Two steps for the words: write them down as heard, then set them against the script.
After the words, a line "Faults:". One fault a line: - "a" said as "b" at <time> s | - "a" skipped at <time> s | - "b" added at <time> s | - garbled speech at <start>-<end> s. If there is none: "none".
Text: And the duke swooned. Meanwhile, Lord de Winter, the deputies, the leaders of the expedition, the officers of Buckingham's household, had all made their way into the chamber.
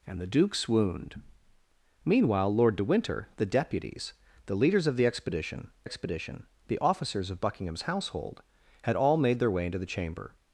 And the duke swooned. Meanwhile, Lord de Winter, the deputies, the leaders of the expedition expedition, the officers of Buckingham's household, had all made their way into the chamber.
Faults:
- "expedition" added at 5.8 s